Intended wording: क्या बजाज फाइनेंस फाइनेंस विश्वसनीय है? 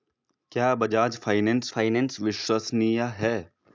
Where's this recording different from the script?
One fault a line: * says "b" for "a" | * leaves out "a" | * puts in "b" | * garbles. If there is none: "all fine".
all fine